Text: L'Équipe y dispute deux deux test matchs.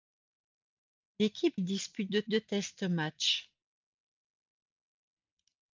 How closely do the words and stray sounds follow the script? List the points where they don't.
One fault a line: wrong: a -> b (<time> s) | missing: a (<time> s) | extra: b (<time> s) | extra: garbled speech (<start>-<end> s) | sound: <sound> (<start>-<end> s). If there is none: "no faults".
no faults